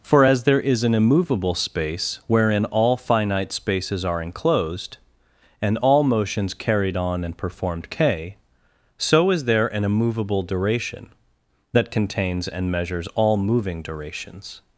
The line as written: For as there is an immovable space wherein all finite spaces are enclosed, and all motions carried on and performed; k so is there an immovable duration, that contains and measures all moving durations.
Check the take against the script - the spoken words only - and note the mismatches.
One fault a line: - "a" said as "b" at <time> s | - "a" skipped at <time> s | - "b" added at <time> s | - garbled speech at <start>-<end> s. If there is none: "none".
none